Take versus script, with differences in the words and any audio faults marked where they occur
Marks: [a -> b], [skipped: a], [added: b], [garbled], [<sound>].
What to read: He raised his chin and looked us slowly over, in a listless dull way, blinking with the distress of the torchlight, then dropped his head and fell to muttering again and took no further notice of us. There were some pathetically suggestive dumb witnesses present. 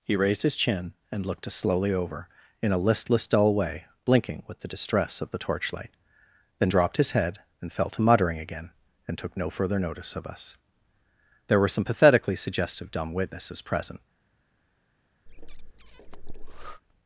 He raised his chin and looked us slowly over, in a listless dull way, blinking with the distress of the torchlight, then dropped his head and fell to muttering again and took no further notice of us. There were some pathetically suggestive dumb witnesses present. [breath]